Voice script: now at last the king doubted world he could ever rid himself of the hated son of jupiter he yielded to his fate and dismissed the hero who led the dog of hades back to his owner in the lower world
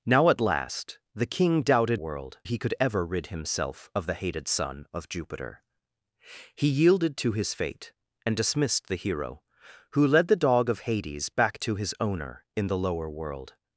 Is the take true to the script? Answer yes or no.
yes